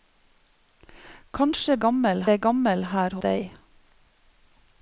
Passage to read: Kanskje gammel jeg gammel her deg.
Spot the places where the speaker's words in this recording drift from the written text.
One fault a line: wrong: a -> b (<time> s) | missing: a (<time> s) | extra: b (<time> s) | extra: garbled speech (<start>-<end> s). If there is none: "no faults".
no faults